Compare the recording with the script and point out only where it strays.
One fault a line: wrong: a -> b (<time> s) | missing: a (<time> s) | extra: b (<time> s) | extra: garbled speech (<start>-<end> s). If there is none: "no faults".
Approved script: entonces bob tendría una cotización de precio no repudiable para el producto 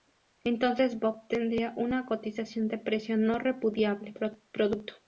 missing: para el (4.1 s)